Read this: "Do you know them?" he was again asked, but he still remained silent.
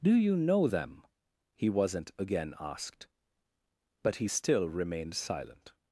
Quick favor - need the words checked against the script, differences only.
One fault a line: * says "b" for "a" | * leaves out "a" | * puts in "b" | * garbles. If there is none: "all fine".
* says "wasn't" for "was"